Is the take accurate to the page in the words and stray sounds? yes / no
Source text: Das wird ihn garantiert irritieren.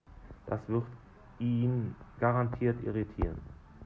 yes